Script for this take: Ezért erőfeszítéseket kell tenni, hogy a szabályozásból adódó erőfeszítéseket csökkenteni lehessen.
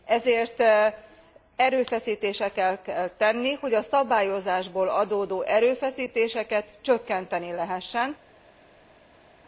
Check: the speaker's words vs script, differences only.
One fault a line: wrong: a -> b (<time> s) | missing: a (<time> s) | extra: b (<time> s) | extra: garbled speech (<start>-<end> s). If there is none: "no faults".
no faults